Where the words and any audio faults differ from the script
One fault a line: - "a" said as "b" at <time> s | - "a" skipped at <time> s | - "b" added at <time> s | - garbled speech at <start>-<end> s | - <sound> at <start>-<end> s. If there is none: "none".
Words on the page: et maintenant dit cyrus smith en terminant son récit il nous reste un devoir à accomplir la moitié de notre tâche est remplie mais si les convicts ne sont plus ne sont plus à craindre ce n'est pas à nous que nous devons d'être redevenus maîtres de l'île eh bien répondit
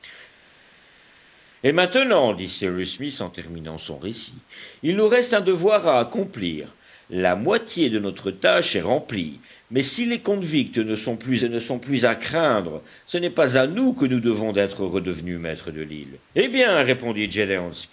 none